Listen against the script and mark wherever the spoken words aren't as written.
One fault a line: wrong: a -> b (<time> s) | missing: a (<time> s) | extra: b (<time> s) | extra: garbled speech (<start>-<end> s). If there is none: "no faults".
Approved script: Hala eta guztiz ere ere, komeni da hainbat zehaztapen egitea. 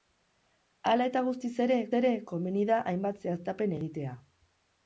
no faults